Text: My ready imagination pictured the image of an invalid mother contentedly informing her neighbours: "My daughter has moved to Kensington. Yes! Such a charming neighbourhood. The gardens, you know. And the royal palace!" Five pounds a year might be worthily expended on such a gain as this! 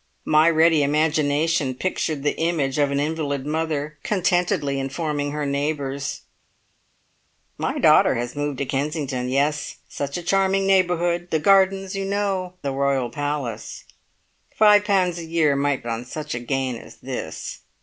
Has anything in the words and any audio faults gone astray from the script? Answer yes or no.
yes